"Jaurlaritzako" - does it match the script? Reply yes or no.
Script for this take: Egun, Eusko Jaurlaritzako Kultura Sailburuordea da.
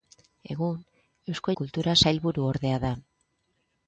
no